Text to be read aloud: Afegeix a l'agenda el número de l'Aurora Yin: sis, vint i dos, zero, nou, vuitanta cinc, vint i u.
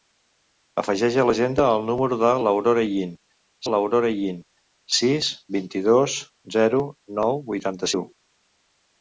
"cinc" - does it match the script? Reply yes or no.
no